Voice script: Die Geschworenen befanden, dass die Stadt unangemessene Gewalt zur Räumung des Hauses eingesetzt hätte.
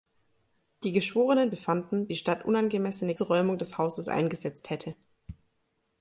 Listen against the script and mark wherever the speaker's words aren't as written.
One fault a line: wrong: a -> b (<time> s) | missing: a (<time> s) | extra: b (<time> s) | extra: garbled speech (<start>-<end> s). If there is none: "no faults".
missing: dass (2.1 s)
missing: Gewalt (3.1 s)